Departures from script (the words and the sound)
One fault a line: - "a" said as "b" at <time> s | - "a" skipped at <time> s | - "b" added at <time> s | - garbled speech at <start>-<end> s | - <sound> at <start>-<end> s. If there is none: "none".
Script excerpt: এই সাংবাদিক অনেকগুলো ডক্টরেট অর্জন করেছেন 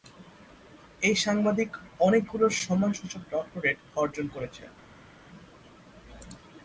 - "সম্মানসূচক" added at 2.6 s